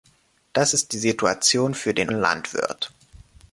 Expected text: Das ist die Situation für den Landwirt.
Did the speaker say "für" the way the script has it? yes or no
yes